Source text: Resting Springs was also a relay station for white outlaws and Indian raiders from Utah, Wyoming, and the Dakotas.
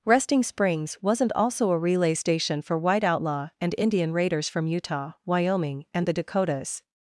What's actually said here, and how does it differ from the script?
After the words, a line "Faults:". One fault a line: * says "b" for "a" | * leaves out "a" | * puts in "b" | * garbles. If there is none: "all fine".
Resting Springs wasn't also a relay station for white outlaw and Indian raiders from Utah, Wyoming, and the Dakotas.
Faults:
* says "wasn't" for "was"
* says "outlaw" for "outlaws"